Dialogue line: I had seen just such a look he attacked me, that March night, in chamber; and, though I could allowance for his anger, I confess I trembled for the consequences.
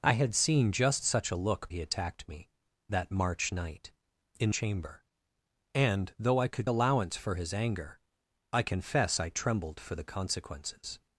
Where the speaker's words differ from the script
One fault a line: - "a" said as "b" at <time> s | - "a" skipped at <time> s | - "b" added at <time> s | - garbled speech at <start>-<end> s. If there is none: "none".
none